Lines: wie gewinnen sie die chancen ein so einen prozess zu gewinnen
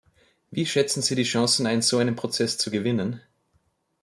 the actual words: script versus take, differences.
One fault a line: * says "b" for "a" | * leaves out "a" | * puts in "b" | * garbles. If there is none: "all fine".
* says "schätzen" for "gewinnen"